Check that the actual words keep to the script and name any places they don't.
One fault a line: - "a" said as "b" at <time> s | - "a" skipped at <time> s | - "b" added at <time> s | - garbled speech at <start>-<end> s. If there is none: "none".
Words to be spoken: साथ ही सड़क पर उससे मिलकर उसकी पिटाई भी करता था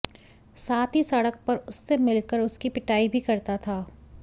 none